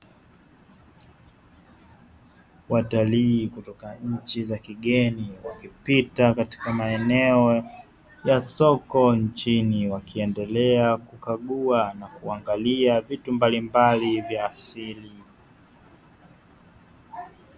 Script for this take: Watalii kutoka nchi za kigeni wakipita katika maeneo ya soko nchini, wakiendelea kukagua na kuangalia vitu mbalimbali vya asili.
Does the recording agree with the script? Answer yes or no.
yes